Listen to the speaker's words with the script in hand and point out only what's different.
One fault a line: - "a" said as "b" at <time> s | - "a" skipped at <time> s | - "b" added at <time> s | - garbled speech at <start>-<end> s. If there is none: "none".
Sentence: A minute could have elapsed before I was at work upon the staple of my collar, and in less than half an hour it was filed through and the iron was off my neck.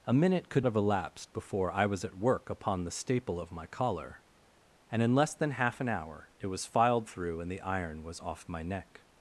none